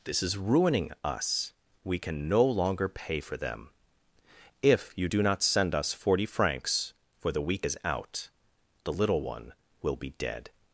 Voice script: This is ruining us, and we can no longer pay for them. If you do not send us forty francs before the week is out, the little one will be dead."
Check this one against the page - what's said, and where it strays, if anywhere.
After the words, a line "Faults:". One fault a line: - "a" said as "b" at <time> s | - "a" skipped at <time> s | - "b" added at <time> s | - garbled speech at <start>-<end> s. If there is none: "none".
This is ruining us, we can no longer pay for them. If you do not send us forty francs for the week is out, the little one will be dead."
Faults:
- "and" skipped at 1.5 s
- "before" said as "for" at 7.2 s